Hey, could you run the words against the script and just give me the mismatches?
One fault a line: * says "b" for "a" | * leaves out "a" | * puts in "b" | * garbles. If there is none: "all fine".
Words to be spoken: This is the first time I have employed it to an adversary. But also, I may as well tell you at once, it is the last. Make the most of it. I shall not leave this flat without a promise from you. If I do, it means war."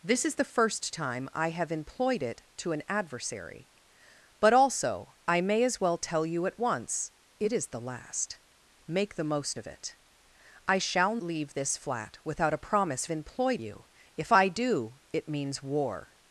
* leaves out "not"
* says "employed" for "from"